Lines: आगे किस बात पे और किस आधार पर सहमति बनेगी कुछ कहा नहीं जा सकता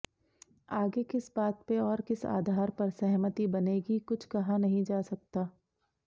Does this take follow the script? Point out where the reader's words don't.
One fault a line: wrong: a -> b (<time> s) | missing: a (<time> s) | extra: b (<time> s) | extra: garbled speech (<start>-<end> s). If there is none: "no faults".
no faults